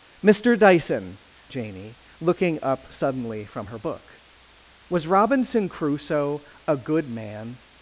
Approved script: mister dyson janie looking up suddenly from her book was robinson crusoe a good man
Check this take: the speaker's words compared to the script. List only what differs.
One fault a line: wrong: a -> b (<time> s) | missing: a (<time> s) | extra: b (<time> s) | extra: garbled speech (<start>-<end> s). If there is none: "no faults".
no faults